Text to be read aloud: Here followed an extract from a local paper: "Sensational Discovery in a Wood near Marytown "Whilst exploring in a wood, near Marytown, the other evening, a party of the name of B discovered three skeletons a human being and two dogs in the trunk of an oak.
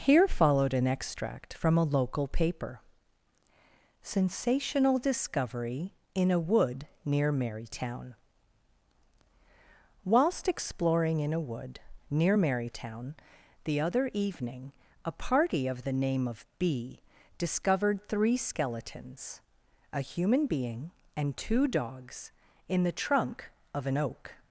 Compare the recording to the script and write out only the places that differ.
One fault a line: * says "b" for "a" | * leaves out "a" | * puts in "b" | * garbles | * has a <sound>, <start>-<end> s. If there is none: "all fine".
all fine